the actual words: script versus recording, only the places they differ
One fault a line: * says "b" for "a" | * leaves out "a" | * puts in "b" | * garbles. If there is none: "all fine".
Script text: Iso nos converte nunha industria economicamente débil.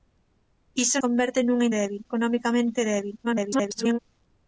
* leaves out "nos"
* says "débil" for "industria"
* garbles